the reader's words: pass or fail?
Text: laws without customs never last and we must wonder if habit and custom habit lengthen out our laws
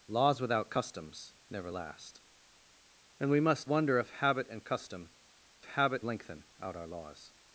pass